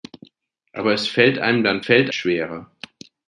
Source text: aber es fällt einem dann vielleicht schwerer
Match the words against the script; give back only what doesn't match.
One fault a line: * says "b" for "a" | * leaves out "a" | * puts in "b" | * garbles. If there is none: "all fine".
* says "fällt" for "vielleicht"